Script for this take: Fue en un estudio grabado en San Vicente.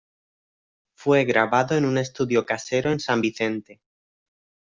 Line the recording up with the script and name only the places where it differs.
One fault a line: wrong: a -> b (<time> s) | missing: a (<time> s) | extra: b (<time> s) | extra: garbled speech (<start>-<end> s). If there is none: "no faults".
extra: grabado (1.2 s)
wrong: grabado -> casero (2.4 s)